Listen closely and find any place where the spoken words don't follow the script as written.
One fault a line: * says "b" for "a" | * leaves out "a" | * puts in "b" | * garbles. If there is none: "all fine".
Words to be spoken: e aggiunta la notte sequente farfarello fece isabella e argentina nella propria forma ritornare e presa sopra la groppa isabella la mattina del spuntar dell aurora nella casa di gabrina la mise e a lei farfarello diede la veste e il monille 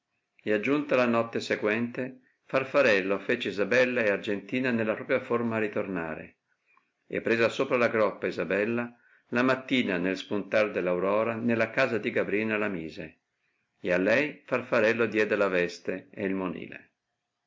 * says "nel" for "del"